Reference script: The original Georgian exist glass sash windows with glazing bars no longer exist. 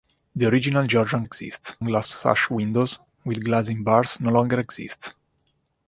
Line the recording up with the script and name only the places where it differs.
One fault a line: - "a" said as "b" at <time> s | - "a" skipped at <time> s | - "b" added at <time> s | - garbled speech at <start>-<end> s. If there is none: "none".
none